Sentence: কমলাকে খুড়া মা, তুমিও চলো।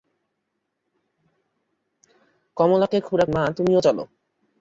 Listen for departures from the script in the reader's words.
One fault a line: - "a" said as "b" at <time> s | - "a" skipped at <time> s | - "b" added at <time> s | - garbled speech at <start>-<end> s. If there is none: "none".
none